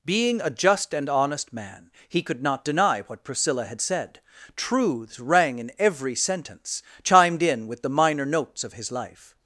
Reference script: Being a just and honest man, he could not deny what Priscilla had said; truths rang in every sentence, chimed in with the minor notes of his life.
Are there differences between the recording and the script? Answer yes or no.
no